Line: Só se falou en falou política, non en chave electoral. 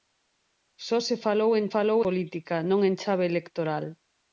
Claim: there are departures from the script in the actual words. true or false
false